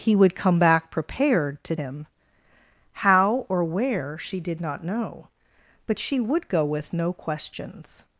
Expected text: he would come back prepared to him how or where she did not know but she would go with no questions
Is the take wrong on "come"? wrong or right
right